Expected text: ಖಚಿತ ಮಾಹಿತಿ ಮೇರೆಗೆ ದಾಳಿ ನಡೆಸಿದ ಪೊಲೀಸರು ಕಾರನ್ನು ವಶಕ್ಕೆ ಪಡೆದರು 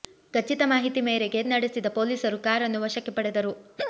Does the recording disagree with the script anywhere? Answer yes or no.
yes